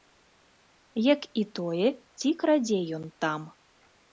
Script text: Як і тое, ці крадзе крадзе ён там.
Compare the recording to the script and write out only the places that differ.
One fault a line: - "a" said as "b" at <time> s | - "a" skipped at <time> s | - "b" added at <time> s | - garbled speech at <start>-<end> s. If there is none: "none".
- "крадзе" skipped at 2.8 s